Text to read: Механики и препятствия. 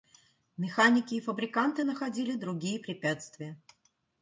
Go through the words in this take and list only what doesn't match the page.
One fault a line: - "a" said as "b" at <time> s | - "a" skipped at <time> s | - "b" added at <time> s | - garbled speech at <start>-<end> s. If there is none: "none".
- "фабриканты находили другие" added at 1.2 s